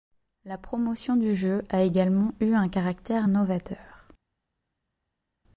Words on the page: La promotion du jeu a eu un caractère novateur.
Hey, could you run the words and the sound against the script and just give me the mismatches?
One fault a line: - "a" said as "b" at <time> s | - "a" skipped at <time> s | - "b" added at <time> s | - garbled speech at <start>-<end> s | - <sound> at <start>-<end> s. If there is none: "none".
- "également" added at 1.8 s